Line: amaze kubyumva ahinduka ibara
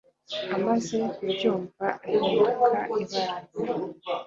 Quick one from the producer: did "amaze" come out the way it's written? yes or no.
yes